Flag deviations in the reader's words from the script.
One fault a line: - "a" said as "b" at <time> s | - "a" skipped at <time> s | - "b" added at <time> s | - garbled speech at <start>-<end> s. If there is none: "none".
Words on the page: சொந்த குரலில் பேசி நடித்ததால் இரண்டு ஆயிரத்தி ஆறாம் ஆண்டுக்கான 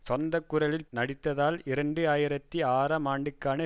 - "பேசி" skipped at 0.9 s